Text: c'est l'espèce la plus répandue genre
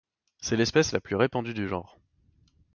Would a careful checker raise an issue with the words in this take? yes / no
yes